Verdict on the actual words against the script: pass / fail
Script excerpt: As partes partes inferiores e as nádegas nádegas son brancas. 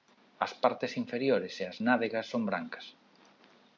fail